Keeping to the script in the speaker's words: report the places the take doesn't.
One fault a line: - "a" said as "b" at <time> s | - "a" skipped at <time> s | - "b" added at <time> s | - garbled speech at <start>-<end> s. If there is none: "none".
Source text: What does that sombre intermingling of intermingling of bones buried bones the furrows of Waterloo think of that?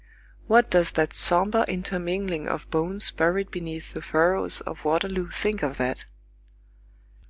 - "intermingling of" skipped at 2.7 s
- "bones" said as "beneath" at 3.5 s